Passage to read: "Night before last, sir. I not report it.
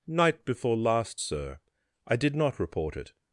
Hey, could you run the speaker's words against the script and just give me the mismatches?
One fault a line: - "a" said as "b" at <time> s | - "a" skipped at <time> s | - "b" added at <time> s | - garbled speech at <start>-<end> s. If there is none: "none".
- "did" added at 2.2 s